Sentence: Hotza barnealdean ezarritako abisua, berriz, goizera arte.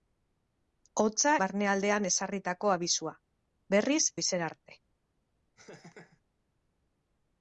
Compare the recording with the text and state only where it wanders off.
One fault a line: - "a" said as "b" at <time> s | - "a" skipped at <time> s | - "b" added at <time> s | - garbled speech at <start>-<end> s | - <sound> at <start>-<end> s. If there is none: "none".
- laugh at 5.6-6.2 s